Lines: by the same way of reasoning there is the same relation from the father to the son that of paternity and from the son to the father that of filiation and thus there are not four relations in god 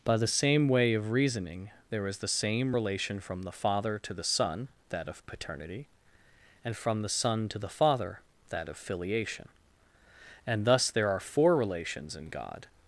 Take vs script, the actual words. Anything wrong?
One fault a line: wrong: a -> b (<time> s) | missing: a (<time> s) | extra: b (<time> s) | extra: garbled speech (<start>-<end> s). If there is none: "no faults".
missing: not (11.2 s)